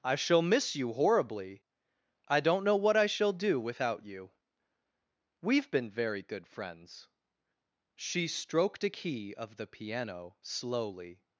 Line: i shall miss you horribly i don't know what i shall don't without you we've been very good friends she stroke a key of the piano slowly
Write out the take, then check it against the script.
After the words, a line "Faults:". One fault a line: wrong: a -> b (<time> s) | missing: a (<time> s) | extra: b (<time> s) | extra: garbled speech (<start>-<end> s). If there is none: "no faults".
i shall miss you horribly i don't know what i shall do without you we've been very good friends she stroked a key of the piano slowly
Faults:
wrong: don't -> do (3.3 s)
wrong: stroke -> stroked (8.3 s)